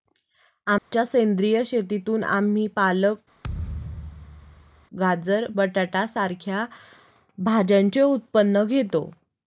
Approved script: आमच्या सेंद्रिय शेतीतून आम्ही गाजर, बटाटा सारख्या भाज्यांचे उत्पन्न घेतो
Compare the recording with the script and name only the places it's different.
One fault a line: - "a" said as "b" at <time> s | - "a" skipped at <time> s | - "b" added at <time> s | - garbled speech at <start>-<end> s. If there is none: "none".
- "पालक" added at 2.7 s